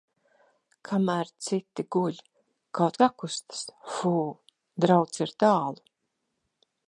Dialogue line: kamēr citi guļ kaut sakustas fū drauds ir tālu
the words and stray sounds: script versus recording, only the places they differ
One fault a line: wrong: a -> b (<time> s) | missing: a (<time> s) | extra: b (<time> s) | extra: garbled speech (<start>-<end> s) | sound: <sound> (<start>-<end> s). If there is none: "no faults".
no faults